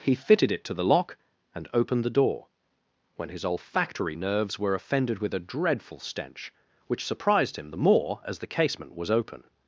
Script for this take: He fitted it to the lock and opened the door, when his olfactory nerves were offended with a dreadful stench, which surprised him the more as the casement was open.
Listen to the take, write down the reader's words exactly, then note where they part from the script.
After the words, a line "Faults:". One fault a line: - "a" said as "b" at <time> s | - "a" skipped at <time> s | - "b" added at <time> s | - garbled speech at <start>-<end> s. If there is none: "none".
He fitted it to the lock and opened the door, when his olfactory nerves were offended with a dreadful stench, which surprised him the more as the casement was open.
Faults:
none